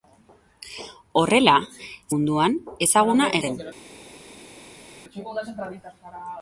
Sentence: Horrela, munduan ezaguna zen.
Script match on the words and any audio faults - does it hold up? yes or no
yes